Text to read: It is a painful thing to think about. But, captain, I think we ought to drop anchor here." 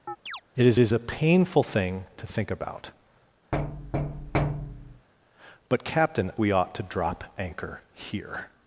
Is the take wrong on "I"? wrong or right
wrong